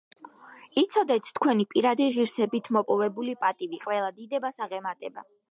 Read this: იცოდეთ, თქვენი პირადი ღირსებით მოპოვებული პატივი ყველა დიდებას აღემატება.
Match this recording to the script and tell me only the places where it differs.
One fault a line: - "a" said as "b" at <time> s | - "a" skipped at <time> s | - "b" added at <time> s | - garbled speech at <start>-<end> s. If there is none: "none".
none